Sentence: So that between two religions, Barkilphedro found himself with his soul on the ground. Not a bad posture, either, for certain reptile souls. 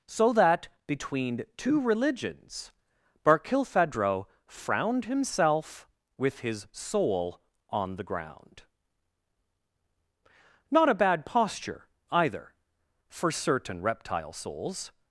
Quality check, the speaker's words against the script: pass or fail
fail